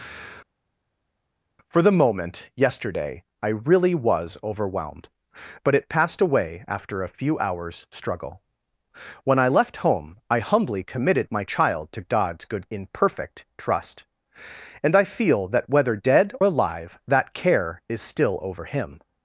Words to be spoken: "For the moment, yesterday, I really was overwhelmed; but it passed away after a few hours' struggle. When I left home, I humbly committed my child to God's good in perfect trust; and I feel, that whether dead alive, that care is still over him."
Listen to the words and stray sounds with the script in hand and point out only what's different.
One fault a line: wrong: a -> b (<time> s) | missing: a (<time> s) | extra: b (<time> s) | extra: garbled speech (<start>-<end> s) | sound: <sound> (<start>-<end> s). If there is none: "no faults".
no faults